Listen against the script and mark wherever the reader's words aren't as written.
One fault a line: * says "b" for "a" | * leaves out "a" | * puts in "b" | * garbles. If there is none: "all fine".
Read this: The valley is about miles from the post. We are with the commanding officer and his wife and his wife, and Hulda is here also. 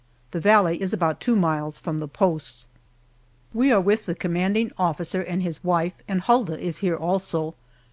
* puts in "two"
* leaves out "his wife and"